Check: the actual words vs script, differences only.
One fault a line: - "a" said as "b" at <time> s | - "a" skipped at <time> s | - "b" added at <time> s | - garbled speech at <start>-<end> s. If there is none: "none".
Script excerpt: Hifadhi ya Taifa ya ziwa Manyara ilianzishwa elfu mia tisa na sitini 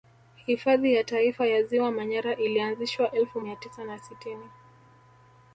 none